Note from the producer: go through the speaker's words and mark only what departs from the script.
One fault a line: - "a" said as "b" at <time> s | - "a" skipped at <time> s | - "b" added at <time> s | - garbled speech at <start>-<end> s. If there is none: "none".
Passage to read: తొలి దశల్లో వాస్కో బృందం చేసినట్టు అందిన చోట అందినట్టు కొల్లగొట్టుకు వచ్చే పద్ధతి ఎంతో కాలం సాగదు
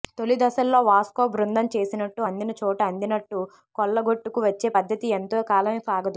none